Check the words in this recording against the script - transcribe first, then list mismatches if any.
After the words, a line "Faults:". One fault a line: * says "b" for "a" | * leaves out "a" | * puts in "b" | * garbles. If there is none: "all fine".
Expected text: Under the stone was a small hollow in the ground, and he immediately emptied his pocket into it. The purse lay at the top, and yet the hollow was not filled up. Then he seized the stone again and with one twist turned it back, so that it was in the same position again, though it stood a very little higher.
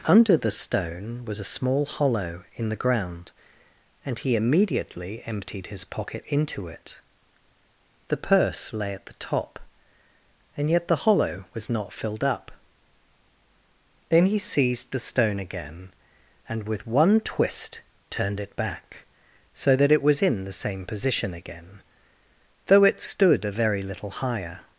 Under the stone was a small hollow in the ground, and he immediately emptied his pocket into it. The purse lay at the top, and yet the hollow was not filled up. Then he seized the stone again and with one twist turned it back, so that it was in the same position again, though it stood a very little higher.
Faults:
all fine